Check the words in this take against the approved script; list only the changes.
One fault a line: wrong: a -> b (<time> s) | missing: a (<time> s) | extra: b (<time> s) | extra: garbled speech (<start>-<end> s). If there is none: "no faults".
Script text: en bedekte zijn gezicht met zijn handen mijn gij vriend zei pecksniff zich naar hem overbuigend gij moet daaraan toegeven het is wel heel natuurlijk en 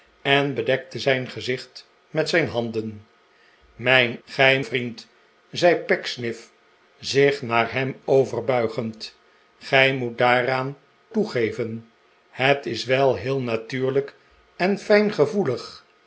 no faults